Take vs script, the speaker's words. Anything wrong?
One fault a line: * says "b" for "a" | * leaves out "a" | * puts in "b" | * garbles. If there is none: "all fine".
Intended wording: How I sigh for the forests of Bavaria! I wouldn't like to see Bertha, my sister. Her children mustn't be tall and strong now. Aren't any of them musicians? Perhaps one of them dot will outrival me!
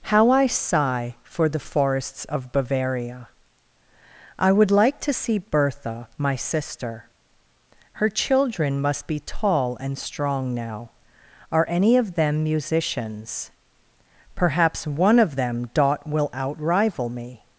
* says "would" for "wouldn't"
* says "must" for "mustn't"
* says "Are" for "Aren't"